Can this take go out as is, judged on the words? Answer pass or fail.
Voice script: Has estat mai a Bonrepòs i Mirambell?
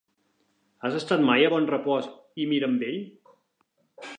pass